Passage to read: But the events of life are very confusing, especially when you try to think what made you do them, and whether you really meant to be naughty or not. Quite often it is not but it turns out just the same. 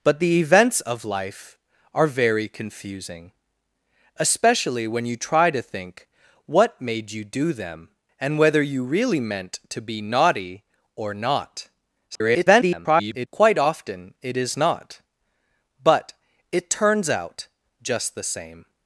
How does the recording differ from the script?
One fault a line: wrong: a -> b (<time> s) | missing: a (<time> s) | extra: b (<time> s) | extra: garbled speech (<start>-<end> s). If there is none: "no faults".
extra: garbled speech (12.1-13.3 s)